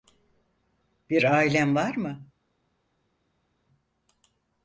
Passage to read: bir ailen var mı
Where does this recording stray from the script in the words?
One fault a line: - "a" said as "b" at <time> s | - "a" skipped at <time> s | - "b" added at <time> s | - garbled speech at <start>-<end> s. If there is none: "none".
none